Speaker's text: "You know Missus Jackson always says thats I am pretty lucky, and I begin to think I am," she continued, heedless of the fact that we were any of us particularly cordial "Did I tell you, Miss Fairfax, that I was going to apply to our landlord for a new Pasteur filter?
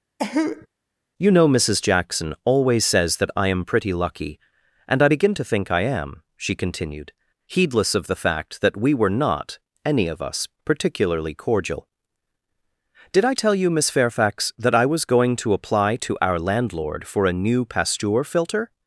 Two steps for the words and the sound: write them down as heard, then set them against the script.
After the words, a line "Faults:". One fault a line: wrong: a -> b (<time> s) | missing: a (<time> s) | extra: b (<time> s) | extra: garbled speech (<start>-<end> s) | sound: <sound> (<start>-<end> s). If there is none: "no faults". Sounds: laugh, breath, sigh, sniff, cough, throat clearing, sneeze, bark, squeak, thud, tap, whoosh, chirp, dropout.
"You know Missus Jackson always says that I am pretty lucky, and I begin to think I am," she continued, heedless of the fact that we were not any of us particularly cordial "Did I tell you, Miss Fairfax, that I was going to apply to our landlord for a new Pasteur filter?
Faults:
sound: cough (0.2-0.7 s)
wrong: thats -> that (3.2 s)
extra: not (9.1 s)